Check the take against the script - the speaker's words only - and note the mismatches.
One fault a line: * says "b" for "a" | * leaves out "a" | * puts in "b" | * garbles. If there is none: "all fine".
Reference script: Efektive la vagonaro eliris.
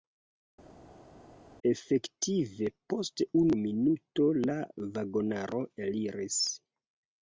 * puts in "post unu minuto"